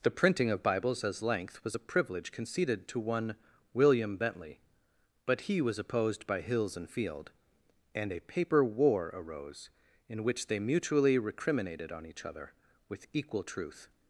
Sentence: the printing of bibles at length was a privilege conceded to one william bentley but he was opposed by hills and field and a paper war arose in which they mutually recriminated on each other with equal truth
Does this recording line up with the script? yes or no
no